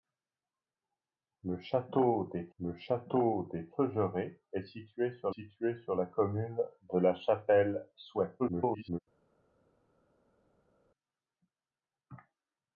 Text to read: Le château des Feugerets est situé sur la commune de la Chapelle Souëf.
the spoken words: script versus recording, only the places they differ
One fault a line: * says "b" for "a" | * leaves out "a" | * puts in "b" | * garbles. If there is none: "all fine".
* puts in "le château des"
* puts in "situé sur"
* garbles